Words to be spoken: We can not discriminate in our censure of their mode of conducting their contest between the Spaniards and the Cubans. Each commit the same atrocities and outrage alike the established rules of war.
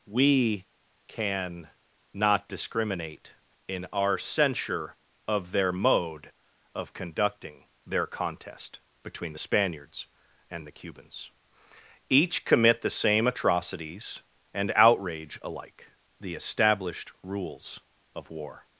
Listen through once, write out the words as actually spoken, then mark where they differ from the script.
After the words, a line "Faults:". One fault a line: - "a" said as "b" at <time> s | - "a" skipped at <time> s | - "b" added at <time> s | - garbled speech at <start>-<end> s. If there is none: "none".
We can not discriminate in our censure of their mode of conducting their contest between the Spaniards and the Cubans. Each commit the same atrocities and outrage alike the established rules of war.
Faults:
none